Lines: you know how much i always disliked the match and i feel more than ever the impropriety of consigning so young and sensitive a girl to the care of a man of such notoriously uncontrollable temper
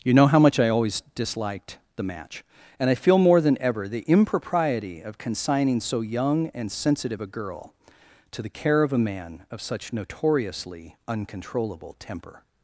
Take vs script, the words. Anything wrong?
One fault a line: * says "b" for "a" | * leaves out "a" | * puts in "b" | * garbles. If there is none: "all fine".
all fine